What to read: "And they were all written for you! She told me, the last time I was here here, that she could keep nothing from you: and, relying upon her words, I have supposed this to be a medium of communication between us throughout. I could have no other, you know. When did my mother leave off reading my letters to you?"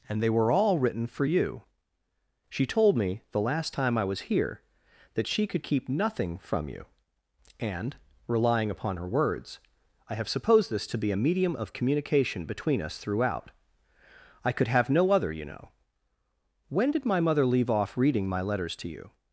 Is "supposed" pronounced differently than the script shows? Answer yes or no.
no